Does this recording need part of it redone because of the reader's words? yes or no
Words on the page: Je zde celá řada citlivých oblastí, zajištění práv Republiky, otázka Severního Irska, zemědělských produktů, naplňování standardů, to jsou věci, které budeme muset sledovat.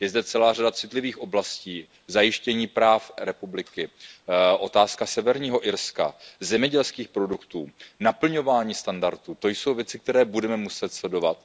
no